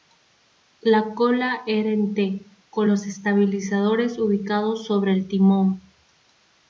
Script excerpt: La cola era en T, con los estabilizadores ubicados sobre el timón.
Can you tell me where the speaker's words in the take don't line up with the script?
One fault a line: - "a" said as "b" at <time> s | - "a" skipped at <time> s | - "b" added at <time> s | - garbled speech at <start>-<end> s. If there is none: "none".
none